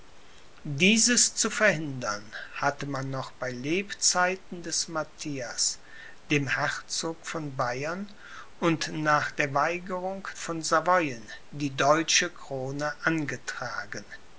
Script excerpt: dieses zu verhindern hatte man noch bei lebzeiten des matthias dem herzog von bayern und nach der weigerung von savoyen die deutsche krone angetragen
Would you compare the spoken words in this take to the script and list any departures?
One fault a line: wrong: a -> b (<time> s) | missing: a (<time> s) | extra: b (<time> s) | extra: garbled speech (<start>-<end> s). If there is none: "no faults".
no faults